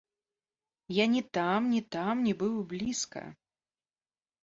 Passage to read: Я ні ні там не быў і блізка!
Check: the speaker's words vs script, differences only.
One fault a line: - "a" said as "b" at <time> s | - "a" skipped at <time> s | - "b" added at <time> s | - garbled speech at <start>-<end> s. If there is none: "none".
- "там" added at 1.4 s